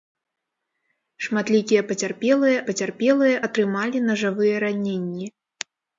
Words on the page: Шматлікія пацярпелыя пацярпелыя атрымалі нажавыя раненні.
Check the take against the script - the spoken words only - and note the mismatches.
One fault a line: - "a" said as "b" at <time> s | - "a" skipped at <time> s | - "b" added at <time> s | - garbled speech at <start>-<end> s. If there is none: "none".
none